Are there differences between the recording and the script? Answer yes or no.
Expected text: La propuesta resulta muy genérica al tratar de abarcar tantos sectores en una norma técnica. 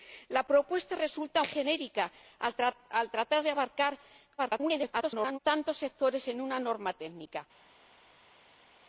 yes